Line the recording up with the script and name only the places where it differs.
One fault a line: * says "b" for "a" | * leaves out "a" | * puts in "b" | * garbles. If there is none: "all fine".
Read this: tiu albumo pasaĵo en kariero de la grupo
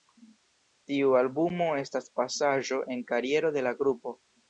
* puts in "estas"